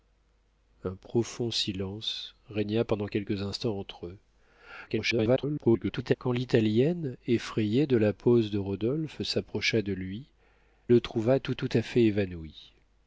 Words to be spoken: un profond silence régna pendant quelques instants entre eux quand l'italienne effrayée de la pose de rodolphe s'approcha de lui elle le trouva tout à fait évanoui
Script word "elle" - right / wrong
wrong